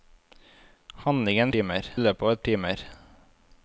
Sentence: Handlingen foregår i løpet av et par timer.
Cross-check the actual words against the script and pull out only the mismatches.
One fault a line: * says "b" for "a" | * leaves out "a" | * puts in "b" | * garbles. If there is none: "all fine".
* says "timer" for "foregår"
* leaves out "par"